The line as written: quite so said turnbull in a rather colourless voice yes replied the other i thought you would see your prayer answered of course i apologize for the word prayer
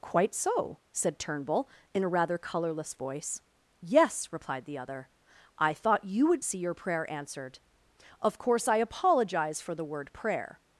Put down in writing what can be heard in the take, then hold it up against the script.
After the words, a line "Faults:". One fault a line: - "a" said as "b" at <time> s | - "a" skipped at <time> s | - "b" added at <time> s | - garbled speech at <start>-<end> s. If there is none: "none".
quite so said turnbull in a rather colourless voice yes replied the other i thought you would see your prayer answered of course i apologize for the word prayer
Faults:
none